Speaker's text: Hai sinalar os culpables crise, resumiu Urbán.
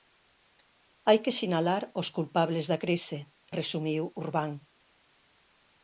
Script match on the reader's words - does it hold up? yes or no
no